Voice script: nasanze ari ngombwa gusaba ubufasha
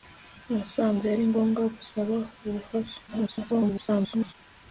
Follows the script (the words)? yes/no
no